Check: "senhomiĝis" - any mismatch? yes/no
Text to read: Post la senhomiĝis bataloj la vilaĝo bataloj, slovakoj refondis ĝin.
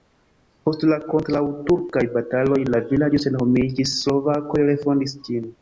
yes